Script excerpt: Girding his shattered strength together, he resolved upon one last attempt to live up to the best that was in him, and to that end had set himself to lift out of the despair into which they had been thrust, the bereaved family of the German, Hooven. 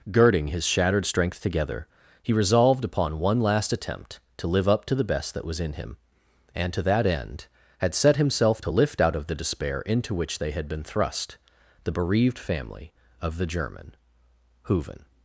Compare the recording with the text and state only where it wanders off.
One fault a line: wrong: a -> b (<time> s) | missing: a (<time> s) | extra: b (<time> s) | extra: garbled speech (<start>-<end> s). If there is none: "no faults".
no faults